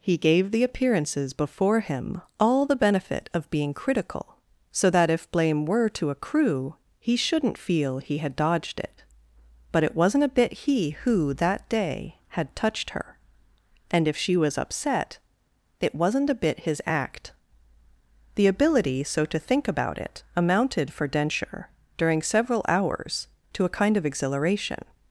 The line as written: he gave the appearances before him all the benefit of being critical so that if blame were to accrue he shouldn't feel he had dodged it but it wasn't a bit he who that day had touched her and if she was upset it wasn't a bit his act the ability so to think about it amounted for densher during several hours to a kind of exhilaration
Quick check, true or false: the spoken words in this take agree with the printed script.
true